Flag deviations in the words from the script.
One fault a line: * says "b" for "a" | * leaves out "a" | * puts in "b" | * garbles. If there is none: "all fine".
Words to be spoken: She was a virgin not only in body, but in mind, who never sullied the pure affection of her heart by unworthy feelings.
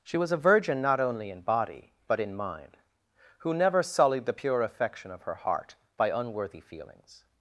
all fine